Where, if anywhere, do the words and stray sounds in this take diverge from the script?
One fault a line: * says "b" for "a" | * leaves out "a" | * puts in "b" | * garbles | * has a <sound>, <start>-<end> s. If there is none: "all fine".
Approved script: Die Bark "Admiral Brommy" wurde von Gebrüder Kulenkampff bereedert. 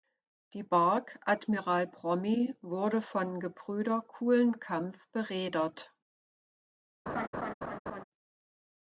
* has a laugh, 7.1-8.0 s